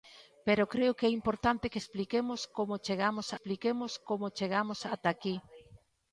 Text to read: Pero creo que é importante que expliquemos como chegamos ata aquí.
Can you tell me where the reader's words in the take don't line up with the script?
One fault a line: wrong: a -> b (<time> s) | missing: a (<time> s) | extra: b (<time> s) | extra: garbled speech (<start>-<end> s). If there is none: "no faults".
extra: expliquemos como chegamos (3.3 s)